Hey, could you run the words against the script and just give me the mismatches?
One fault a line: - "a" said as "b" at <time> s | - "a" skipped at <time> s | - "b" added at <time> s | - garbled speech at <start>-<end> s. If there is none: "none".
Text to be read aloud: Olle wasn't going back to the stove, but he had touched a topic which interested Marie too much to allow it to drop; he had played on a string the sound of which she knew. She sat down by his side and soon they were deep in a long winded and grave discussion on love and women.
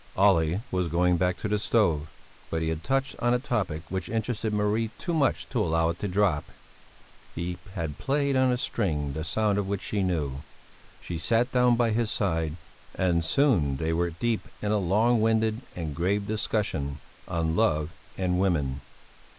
- "wasn't" said as "was" at 0.7 s
- "on" added at 3.2 s